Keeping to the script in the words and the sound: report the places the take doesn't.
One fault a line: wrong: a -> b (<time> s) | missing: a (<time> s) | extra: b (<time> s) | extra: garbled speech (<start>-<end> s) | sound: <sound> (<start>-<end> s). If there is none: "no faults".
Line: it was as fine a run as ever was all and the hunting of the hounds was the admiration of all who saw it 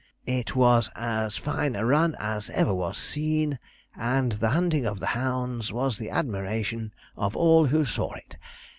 wrong: all -> seen (3.0 s)